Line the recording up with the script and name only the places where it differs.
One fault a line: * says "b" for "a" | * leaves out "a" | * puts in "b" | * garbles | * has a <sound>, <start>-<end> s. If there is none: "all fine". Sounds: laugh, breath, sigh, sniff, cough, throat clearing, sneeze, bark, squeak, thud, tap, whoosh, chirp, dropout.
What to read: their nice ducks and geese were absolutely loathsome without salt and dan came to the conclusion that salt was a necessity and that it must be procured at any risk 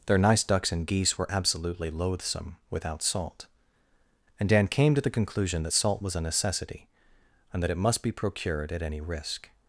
all fine